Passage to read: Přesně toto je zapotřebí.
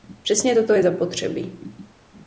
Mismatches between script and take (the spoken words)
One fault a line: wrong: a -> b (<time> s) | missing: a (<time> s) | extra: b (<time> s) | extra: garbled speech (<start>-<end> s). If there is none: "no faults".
no faults